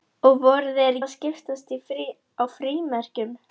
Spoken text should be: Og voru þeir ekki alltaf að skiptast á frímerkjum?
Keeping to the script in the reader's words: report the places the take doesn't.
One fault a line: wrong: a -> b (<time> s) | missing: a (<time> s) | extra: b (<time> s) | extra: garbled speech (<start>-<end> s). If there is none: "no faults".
missing: ekki alltaf (1.0 s)